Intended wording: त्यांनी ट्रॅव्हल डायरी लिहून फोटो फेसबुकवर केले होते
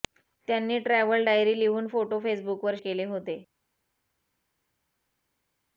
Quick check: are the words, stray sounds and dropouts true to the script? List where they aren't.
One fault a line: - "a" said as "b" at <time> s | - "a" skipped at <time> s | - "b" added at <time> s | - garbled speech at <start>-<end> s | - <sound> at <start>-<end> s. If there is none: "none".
none